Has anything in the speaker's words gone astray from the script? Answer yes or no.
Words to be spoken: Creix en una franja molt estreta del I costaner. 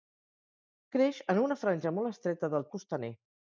no